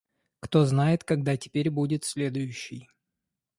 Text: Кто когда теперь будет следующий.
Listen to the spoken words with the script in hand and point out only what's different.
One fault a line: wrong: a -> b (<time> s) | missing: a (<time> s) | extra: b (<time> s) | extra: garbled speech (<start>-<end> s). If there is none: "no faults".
extra: знает (0.7 s)